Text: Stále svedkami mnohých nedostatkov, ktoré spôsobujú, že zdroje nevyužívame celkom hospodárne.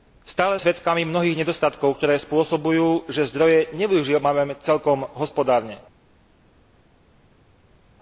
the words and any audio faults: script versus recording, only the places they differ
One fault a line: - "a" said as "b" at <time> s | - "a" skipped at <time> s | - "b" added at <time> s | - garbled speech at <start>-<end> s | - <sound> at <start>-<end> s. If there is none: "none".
none